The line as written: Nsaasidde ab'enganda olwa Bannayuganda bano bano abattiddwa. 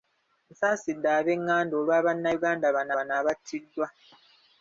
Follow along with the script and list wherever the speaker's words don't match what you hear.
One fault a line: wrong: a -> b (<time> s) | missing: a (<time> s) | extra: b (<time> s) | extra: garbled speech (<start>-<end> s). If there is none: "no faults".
no faults